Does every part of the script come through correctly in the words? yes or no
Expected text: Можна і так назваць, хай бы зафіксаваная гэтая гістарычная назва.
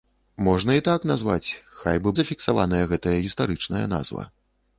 yes